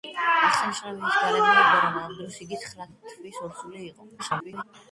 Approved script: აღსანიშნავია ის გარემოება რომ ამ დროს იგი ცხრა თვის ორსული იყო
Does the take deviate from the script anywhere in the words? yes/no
yes